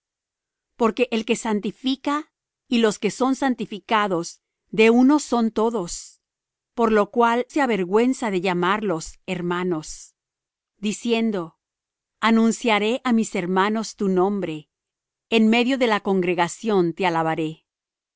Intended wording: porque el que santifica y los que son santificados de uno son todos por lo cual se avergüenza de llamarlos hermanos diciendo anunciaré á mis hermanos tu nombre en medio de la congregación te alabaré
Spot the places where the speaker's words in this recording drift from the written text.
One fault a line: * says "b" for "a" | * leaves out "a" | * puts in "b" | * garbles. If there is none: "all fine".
all fine